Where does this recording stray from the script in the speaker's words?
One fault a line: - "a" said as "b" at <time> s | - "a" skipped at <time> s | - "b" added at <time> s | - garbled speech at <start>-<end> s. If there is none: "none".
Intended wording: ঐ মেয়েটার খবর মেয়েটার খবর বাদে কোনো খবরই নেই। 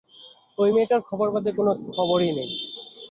- "মেয়েটার খবর" skipped at 1.3 s